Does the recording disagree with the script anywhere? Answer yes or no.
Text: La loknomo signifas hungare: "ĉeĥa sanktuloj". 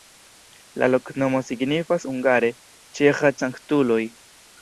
no